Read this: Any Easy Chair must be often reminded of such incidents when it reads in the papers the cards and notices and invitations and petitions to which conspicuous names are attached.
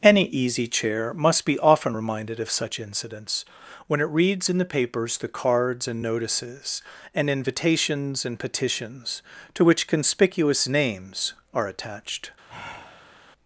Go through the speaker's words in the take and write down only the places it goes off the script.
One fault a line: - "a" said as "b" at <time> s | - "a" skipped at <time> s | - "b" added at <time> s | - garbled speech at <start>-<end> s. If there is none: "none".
none